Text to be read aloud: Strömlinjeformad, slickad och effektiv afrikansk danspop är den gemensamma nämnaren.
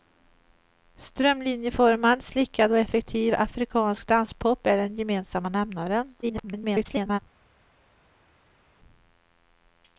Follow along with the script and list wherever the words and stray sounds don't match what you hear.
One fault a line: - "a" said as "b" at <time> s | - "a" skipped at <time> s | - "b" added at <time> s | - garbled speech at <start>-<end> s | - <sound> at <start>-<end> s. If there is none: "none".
- garbled speech at 6.2-7.2 s